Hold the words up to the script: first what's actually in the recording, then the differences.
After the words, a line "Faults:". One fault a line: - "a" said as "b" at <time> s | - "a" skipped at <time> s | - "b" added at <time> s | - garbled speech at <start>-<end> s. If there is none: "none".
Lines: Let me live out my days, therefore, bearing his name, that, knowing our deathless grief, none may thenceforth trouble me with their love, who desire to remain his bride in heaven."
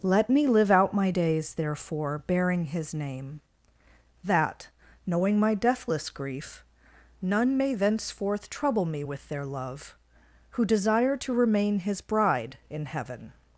Let me live out my days, therefore, bearing his name, that, knowing my deathless grief, none may thenceforth trouble me with their love, who desire to remain his bride in heaven."
Faults:
- "our" said as "my" at 5.4 s